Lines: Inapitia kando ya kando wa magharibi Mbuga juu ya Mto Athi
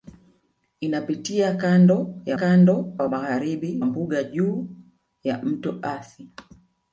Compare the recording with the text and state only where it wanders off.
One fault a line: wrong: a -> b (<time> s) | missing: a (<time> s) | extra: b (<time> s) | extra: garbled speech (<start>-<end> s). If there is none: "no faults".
no faults